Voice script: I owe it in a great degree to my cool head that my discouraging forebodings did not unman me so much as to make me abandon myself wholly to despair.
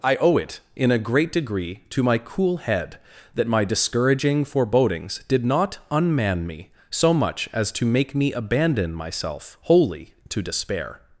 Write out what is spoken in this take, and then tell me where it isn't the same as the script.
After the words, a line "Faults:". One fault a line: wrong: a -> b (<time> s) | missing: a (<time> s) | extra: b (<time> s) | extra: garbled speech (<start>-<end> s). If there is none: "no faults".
I owe it in a great degree to my cool head that my discouraging forebodings did not unman me so much as to make me abandon myself wholly to despair.
Faults:
no faults